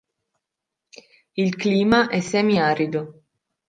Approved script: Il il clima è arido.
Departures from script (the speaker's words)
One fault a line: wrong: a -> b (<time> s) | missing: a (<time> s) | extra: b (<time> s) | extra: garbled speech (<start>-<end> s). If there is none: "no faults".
missing: il (1.6 s)
extra: semi (2.2 s)